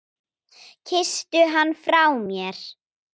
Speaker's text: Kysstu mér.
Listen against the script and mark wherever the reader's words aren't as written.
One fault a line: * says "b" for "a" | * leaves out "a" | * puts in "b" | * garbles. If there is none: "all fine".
* puts in "hann frá"